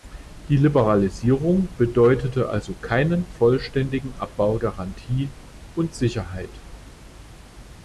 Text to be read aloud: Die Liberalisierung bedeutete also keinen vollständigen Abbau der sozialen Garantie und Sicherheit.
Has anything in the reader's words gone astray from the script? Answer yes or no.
yes